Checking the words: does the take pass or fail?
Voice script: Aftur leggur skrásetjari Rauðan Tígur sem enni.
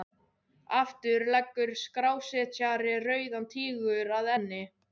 fail